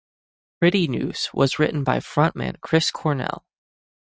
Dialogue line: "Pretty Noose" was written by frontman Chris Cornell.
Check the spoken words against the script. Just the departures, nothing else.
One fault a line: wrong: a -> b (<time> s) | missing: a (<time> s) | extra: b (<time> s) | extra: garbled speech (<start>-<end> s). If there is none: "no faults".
no faults